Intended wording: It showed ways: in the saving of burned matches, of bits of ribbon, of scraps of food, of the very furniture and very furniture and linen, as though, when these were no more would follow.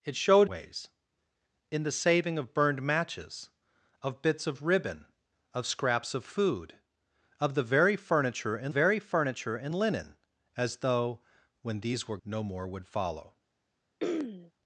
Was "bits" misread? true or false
false